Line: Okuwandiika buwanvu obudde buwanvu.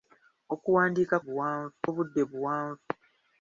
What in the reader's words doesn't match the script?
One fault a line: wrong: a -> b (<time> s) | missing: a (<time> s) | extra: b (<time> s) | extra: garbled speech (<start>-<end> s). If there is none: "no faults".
no faults